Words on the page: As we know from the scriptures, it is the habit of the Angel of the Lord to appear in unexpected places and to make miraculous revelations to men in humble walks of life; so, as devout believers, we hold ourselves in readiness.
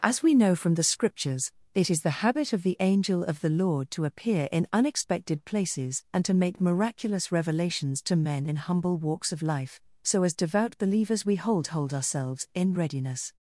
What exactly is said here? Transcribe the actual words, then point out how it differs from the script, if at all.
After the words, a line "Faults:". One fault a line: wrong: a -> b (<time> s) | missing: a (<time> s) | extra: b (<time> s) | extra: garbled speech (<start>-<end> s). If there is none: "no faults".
As we know from the scriptures, it is the habit of the Angel of the Lord to appear in unexpected places and to make miraculous revelations to men in humble walks of life; so, as devout believers, we hold hold ourselves in readiness.
Faults:
extra: hold (11.7 s)